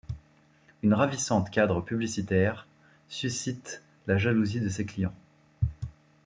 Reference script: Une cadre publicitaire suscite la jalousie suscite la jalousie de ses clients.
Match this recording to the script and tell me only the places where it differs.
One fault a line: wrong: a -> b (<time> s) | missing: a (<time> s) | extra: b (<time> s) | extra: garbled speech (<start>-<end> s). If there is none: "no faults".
extra: ravissante (0.9 s)
missing: suscite la jalousie (4.6 s)